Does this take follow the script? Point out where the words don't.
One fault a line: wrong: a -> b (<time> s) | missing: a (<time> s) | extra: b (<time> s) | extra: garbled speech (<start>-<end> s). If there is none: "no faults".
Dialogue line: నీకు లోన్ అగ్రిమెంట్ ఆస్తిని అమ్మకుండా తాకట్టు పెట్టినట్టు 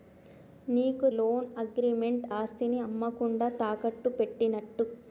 no faults